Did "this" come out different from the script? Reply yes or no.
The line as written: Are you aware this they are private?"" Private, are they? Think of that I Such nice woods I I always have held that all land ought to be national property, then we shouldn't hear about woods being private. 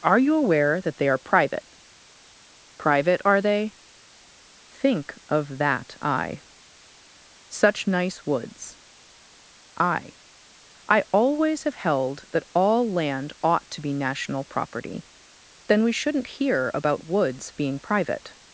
yes